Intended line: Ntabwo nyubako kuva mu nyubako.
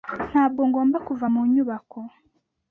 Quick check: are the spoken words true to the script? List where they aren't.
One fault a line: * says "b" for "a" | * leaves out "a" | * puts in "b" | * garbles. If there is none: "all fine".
* says "ngomba" for "nyubako"